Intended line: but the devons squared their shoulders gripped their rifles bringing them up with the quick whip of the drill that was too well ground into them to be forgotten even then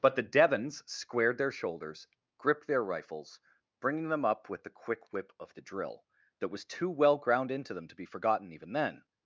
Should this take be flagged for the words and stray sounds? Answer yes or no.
no